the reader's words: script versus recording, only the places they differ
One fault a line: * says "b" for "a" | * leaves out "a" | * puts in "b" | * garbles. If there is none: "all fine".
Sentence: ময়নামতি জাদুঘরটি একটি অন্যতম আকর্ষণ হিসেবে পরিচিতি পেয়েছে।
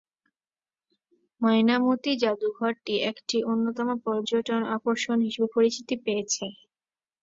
* puts in "পর্যটন"